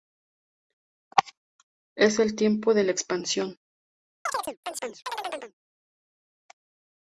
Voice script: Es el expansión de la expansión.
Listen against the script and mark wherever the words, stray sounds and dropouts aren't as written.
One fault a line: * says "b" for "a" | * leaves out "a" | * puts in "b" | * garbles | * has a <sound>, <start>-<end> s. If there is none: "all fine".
* says "tiempo" for "expansión"
* has a chirp, 4.3-5.5 s